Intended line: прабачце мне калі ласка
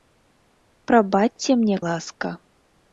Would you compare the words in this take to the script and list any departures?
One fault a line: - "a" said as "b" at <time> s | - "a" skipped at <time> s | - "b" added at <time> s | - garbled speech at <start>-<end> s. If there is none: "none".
- "калі" skipped at 1.8 s